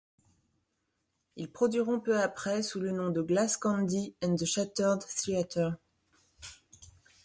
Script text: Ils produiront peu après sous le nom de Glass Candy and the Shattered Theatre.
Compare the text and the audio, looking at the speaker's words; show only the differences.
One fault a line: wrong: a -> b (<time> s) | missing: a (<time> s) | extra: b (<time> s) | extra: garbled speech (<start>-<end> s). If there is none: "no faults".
no faults